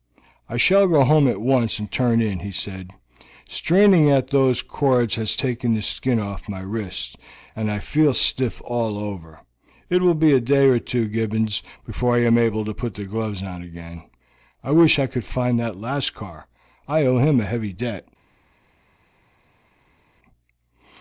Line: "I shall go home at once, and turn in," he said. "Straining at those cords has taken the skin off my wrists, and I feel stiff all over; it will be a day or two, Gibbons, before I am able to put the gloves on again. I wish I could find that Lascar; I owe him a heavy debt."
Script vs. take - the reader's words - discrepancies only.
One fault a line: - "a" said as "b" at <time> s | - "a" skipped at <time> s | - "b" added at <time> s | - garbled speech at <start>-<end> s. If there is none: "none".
none